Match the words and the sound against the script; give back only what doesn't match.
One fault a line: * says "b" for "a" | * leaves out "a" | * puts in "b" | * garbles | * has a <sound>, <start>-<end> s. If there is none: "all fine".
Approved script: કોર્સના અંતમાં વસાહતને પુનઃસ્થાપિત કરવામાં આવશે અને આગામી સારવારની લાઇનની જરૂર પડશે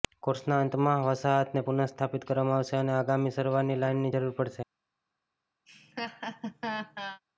* has a laugh, 5.7-7.2 s